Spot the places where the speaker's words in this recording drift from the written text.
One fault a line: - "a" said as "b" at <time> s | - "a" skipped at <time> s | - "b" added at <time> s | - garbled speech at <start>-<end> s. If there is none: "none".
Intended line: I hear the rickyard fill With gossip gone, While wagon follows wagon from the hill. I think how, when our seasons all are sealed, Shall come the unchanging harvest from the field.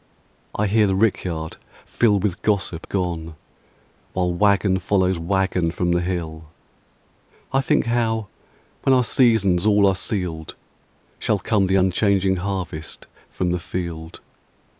none